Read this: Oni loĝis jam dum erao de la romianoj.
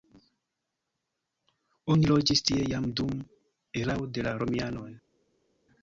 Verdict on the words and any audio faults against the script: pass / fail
fail